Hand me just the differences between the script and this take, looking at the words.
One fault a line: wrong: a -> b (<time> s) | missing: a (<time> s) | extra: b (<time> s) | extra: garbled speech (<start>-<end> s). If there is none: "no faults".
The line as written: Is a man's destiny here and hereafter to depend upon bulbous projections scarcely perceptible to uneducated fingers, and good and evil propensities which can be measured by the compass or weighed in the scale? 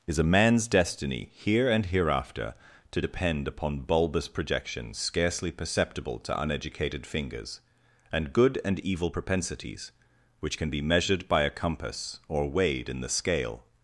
wrong: the -> a (11.4 s)